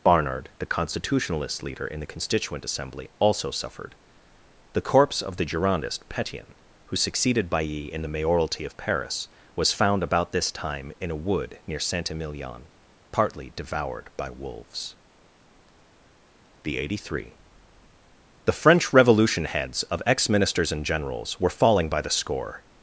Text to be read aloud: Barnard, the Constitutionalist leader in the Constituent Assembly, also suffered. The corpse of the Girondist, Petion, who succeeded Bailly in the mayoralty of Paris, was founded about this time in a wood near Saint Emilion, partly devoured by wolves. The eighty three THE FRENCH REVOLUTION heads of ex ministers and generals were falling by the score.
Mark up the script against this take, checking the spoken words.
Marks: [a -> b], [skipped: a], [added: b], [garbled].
Barnard, the Constitutionalist leader in the Constituent Assembly, also suffered. The corpse of the Girondist, Petion, who succeeded Bailly in the mayoralty of Paris, was [founded -> found] about this time in a wood near Saint Emilion, partly devoured by wolves. The eighty three THE FRENCH REVOLUTION heads of ex ministers and generals were falling by the score.